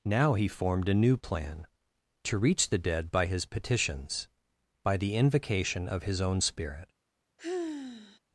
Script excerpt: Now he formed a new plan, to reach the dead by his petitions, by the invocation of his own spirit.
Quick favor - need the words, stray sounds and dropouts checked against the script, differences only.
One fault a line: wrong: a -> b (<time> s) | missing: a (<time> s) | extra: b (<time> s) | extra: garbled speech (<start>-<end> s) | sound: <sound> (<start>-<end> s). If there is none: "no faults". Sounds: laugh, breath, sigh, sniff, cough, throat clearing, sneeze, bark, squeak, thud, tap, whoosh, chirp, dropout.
sound: sigh (7.4-8.2 s)